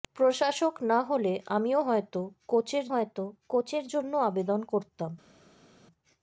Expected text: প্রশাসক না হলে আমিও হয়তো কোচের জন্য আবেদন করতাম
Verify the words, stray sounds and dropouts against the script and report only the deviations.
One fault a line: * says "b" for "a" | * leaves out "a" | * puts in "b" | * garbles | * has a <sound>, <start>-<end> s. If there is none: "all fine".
* puts in "হয়তো কোচের"